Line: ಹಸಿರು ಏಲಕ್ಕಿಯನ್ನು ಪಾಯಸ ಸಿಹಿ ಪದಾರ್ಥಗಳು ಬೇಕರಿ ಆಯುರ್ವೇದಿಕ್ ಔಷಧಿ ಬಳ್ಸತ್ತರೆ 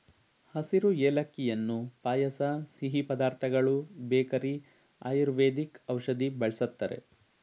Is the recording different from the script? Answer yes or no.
no